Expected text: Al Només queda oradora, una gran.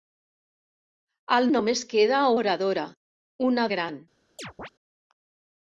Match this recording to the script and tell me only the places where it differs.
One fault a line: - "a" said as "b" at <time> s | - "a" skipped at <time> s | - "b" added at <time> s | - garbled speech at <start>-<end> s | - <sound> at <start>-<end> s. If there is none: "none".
- chirp at 4.4-4.7 s